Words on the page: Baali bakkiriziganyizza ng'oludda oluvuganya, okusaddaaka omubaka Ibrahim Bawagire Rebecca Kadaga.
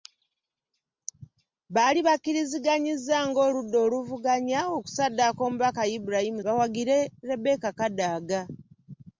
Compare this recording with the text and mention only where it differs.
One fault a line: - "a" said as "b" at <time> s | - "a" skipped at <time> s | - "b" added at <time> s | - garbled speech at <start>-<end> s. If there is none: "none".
none